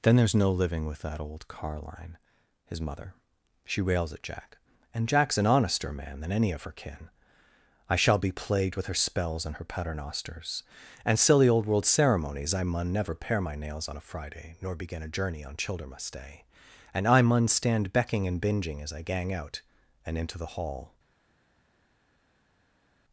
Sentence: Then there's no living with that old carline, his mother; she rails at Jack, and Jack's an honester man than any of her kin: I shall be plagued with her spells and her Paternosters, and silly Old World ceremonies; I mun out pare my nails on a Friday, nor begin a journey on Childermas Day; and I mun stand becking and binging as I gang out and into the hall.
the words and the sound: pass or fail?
fail